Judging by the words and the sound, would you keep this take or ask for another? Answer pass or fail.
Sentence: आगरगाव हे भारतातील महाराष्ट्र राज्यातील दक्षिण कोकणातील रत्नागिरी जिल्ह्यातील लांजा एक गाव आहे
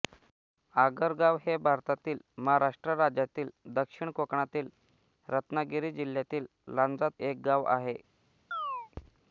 fail